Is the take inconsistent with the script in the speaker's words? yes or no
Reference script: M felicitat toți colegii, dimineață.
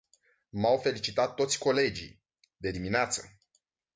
yes